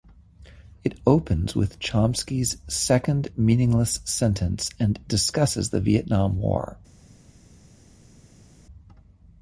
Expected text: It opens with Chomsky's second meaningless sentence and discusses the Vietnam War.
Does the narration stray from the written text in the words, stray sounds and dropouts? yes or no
no